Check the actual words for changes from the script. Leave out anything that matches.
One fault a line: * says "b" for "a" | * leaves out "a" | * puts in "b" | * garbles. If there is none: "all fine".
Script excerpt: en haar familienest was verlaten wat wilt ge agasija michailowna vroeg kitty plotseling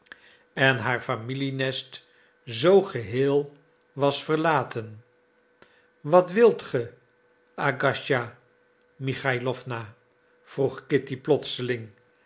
* puts in "zoo geheel"